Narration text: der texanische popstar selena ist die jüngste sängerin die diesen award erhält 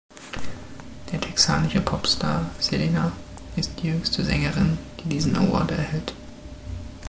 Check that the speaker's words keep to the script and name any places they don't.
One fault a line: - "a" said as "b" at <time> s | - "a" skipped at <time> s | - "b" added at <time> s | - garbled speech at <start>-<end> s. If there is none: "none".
none